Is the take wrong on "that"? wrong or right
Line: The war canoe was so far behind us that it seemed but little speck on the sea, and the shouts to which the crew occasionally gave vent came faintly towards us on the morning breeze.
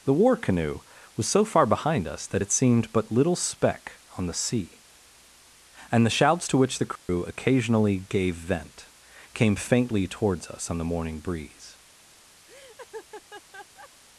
right